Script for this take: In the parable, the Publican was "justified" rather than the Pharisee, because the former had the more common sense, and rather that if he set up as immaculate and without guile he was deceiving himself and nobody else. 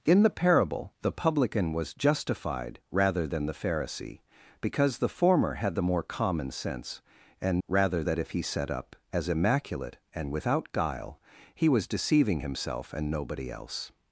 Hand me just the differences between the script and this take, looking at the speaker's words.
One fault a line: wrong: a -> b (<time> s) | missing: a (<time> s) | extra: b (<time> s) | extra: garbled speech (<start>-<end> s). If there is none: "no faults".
no faults